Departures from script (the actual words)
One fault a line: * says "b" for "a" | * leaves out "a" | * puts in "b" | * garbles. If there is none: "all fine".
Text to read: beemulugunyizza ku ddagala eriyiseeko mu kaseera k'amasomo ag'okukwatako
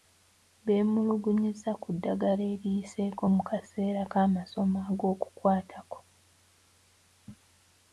all fine